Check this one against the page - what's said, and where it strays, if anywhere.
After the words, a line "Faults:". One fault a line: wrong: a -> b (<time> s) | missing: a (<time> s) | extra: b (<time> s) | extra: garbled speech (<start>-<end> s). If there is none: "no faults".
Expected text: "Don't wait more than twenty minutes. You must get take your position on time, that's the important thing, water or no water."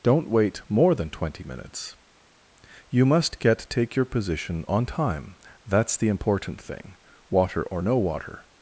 "Don't wait more than twenty minutes. You must get take your position on time, that's the important thing, water or no water."
Faults:
no faults